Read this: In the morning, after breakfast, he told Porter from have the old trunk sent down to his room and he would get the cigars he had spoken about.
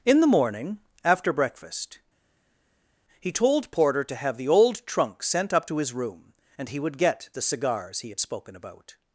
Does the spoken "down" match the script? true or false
false